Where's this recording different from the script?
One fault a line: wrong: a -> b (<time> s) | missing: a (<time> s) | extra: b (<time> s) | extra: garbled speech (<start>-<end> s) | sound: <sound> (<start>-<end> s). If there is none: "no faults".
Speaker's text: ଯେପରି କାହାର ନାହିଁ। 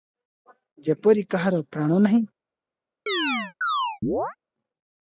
extra: ପ୍ରାଣ (1.7 s)
sound: chirp (3.1-4.4 s)